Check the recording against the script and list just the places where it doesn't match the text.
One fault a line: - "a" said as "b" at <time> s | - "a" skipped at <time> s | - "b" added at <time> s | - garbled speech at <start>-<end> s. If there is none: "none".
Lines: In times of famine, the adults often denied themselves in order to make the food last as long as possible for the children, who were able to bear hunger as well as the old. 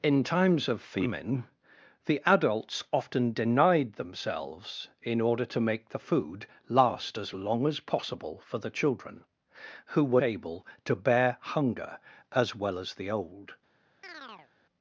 none